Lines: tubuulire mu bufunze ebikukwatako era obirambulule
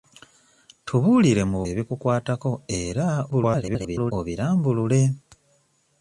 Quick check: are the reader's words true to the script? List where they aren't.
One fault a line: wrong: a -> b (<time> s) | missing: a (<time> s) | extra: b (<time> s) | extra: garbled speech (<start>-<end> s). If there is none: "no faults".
missing: bufunze (1.6 s)
extra: garbled speech (3.3-4.1 s)